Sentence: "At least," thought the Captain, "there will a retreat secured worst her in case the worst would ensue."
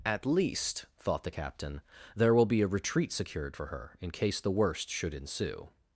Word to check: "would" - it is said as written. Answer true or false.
false